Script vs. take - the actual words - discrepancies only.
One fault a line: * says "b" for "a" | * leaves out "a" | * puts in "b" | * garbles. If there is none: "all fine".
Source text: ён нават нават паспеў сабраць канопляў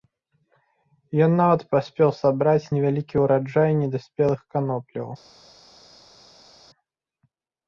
* leaves out "нават"
* puts in "невялікі ўраджай недаспелых"